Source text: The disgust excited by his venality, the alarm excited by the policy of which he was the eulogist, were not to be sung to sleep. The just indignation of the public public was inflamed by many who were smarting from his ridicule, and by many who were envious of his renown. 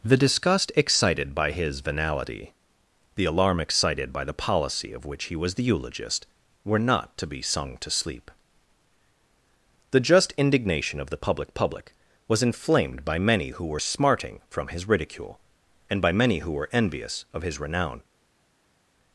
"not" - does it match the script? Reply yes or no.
yes